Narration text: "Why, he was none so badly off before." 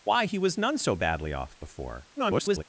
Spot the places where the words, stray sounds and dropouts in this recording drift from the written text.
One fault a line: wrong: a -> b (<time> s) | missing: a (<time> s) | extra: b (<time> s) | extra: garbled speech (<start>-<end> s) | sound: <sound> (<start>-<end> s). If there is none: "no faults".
extra: garbled speech (2.2-2.6 s)